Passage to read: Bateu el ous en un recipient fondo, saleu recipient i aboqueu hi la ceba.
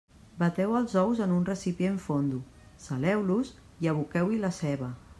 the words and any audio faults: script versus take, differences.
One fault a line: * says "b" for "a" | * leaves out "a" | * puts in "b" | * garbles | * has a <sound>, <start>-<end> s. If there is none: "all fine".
* says "els" for "el"
* says "los" for "recipient"